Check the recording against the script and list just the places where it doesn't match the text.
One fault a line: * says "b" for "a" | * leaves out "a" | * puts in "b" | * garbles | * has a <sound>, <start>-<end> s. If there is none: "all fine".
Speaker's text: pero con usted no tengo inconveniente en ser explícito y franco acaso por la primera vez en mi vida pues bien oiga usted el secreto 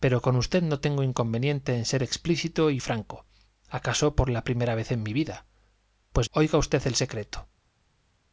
* leaves out "bien"